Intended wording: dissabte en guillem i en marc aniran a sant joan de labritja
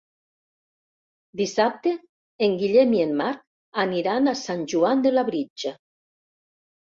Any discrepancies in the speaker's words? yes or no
no